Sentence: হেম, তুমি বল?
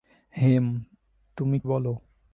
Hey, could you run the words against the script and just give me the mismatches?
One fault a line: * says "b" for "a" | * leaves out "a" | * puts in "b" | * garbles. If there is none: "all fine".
all fine